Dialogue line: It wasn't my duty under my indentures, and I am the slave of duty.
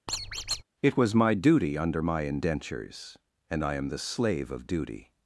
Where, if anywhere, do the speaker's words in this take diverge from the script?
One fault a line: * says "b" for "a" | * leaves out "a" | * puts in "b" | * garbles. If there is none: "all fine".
* says "was" for "wasn't"